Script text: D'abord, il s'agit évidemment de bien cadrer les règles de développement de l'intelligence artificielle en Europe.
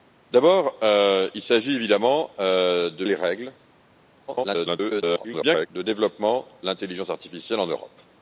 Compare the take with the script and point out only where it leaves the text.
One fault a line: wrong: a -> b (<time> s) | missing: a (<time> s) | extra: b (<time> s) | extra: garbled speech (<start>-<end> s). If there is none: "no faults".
missing: bien cadrer (3.0 s)
extra: garbled speech (4.3-5.7 s)
missing: de (6.5 s)